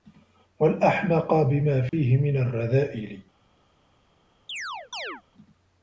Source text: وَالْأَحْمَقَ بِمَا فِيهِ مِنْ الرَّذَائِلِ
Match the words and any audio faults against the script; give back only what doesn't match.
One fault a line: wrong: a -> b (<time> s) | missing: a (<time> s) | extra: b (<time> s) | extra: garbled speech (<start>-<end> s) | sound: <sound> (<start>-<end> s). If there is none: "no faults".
sound: dropout (1.9-1.9 s)
sound: chirp (4.5-5.2 s)